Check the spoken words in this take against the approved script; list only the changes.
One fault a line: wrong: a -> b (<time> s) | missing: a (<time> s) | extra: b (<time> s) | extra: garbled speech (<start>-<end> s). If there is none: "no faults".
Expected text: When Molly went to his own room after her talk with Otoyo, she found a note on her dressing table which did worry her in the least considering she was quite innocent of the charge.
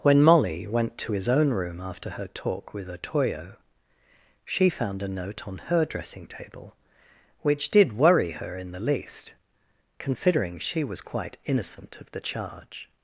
no faults